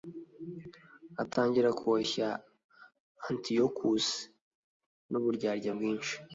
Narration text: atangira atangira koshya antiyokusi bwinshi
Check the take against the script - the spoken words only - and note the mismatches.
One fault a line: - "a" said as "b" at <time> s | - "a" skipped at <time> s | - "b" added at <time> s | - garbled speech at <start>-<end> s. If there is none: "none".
- "atangira" skipped at 1.7 s
- "n'uburyarya" added at 5.1 s